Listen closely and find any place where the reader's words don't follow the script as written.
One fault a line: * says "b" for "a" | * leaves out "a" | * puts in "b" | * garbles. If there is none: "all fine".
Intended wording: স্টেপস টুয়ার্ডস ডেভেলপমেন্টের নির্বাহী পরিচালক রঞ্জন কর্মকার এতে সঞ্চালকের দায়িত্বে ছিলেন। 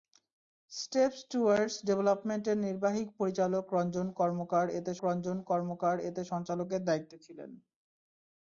* puts in "রঞ্জন কর্মকার এতে"